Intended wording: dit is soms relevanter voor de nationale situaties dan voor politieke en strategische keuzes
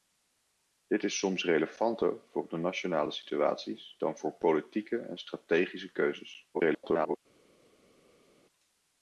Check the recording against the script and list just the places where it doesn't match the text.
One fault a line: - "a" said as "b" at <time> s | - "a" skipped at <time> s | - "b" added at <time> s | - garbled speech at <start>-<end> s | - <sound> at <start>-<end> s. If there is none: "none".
- garbled speech at 6.5-7.2 s